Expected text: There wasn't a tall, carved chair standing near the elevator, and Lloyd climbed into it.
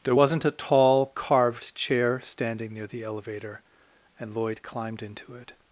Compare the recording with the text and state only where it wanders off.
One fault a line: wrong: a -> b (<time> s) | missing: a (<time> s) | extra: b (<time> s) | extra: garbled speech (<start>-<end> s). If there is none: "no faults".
no faults